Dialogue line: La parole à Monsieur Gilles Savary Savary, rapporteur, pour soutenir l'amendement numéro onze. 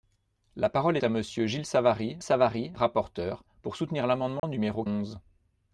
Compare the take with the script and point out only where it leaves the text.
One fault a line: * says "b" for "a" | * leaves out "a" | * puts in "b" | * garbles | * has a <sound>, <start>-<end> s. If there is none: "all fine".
* has a dropout, 4.4-4.4 s